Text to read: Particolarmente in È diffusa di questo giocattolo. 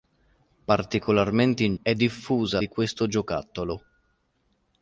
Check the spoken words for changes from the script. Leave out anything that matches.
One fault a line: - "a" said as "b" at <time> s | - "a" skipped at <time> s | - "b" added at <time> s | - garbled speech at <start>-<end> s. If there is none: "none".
none